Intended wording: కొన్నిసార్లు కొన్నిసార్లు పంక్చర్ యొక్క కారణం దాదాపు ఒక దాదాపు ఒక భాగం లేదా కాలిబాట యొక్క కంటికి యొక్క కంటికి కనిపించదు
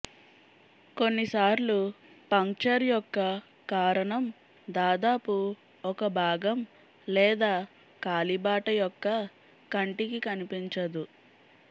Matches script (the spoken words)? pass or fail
fail